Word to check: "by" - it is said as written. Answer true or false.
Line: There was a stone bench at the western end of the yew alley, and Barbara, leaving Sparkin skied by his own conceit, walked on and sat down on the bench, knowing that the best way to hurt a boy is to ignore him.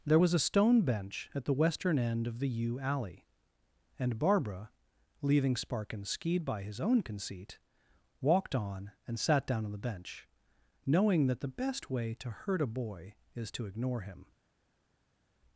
true